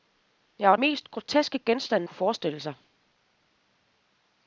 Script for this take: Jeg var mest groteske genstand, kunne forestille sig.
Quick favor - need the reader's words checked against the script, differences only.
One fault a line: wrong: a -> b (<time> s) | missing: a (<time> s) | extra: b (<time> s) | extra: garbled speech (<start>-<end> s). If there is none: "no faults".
no faults